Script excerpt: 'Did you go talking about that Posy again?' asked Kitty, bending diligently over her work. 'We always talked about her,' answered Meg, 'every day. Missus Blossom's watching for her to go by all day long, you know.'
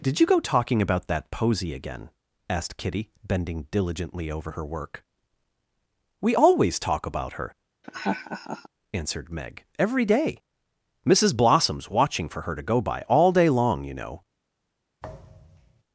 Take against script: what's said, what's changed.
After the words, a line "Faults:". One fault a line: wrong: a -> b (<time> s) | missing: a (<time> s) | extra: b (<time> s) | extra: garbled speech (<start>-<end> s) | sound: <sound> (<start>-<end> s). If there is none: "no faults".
'Did you go talking about that Posy again?' asked Kitty, bending diligently over her work. 'We always talk about her,' answered Meg, 'every day. Missus Blossom's watching for her to go by all day long, you know.'
Faults:
wrong: talked -> talk (6.8 s)
sound: laugh (7.8-8.7 s)
sound: thud (15.0-15.8 s)